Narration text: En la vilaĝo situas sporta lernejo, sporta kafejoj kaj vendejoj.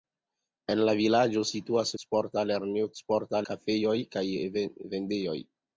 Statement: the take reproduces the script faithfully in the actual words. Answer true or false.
true